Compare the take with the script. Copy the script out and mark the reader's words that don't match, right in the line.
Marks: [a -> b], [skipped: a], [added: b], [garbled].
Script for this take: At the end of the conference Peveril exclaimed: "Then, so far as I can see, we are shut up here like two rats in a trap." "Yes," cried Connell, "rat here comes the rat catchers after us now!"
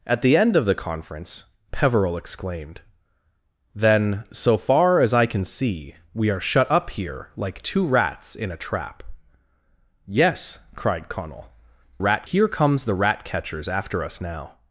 At the end of the conference Peveril exclaimed: "Then, so far as I can see, we are shut up here like two rats in a trap." "Yes," cried Connell, "rat here comes the rat catchers after us now!"